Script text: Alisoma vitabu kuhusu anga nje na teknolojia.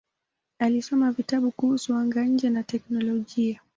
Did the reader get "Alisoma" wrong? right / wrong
right